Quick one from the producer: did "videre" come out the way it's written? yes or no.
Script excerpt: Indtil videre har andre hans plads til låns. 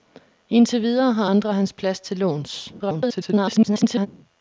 yes